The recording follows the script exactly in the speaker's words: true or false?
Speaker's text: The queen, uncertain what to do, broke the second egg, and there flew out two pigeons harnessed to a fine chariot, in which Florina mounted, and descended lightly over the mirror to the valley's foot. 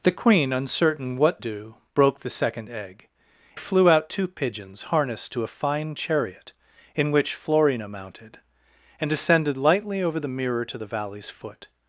false